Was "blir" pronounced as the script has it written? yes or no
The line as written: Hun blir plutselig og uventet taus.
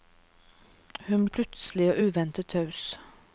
no